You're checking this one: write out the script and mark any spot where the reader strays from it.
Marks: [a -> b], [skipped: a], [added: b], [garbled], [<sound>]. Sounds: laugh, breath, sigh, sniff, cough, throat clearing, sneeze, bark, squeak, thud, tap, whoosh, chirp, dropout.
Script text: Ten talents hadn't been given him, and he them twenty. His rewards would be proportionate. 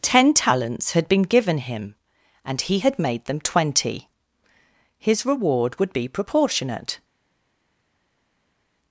Ten talents [hadn't -> had] been given him, and he [added: had made] them twenty. His [rewards -> reward] would be proportionate.